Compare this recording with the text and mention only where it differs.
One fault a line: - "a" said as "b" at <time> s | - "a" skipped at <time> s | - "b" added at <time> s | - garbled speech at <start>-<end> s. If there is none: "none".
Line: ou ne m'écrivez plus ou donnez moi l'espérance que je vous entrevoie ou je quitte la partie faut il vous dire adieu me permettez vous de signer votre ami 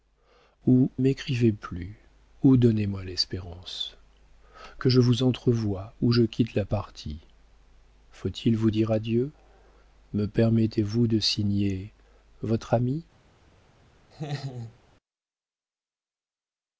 - "ne" skipped at 0.9 s